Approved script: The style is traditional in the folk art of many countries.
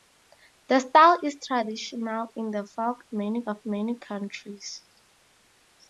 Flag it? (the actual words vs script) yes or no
yes